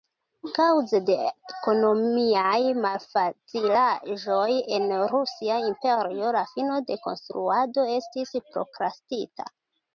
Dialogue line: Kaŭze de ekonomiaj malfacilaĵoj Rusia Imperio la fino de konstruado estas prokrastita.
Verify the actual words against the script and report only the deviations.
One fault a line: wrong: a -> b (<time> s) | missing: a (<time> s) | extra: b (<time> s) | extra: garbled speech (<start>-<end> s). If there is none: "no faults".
extra: en (4.8 s)
wrong: estas -> estis (8.0 s)